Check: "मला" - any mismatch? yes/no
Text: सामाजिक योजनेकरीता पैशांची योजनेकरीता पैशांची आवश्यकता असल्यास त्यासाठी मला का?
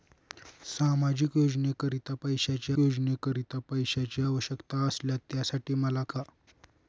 no